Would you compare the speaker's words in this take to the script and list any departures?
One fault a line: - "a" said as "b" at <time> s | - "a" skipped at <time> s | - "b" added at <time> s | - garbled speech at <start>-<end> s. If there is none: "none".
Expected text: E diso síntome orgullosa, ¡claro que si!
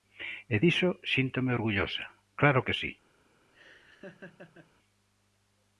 none